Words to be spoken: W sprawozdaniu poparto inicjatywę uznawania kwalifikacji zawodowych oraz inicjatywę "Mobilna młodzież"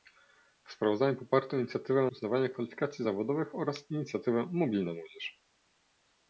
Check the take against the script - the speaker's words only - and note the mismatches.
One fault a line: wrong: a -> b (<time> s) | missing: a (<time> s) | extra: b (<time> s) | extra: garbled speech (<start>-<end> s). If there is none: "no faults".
no faults